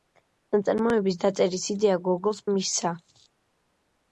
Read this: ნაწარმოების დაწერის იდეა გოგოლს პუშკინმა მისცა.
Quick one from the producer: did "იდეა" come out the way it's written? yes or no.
yes